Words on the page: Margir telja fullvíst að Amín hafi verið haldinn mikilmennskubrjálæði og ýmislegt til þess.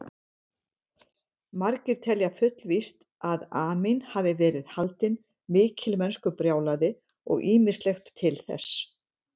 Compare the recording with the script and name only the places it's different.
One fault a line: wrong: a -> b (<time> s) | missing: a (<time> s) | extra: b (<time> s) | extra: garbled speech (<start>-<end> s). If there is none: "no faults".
no faults